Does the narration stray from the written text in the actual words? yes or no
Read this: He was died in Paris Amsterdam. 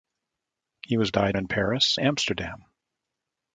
no